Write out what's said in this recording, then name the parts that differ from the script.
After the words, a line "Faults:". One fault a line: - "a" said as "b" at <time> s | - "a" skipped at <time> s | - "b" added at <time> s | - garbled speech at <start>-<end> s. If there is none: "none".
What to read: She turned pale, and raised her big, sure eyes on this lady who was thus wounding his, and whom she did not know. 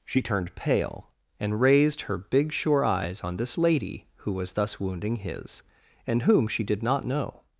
She turned pale, and raised her big, sure eyes on this lady who was thus wounding his, and whom she did not know.
Faults:
none